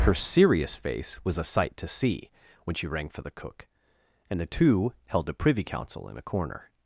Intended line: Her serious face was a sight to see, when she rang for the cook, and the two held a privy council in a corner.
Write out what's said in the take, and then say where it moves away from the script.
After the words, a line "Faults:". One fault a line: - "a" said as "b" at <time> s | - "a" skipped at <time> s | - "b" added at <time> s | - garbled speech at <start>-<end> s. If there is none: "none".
Her serious face was a sight to see, when she rang for the cook, and the two held a privy council in a corner.
Faults:
none